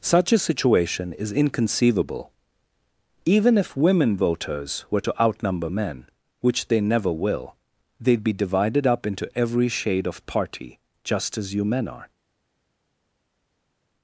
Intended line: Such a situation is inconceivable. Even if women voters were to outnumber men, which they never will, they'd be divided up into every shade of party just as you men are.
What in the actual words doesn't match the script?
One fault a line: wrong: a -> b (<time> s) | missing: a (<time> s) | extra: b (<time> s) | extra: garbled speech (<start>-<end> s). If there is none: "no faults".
no faults